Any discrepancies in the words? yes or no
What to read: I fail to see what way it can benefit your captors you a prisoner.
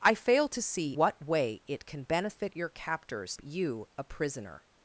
no